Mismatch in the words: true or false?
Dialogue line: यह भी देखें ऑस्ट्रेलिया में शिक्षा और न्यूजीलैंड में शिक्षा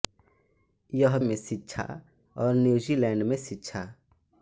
true